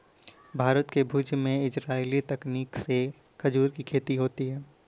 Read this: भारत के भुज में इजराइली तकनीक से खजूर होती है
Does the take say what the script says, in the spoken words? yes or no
no